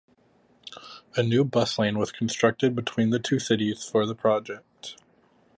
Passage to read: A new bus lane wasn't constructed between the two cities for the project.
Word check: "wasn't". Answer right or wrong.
wrong